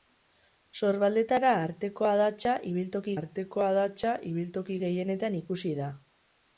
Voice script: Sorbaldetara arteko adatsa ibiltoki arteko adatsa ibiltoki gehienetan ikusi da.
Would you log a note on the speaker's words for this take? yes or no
no